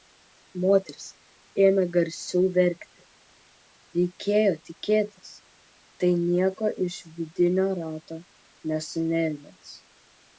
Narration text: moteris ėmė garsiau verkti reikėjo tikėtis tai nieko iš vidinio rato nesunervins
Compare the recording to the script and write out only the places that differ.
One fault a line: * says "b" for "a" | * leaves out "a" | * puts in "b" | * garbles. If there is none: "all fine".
all fine